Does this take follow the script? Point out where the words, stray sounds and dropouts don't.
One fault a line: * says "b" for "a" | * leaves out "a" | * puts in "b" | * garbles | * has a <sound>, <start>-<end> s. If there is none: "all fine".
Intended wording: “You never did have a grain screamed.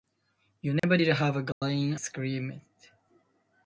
* has a dropout, 0.8-0.8 s
* has a dropout, 1.5-1.6 s